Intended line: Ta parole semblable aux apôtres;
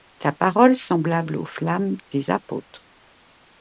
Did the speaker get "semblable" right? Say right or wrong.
right